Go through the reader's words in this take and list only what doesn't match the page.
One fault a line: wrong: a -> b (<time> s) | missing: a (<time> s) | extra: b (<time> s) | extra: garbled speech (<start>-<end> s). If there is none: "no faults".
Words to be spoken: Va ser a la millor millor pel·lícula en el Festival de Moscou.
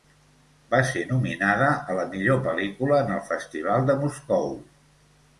extra: nominada (1.1 s)
missing: millor (2.4 s)